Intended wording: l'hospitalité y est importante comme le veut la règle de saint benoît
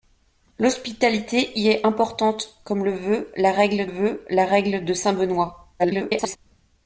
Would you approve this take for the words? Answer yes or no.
no